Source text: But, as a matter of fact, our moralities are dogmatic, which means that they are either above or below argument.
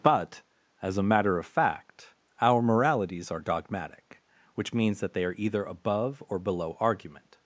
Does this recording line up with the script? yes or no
yes